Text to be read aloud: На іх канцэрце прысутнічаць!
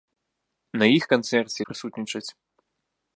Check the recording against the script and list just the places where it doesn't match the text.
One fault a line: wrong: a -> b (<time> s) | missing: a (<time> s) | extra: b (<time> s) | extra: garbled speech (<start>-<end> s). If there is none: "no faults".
no faults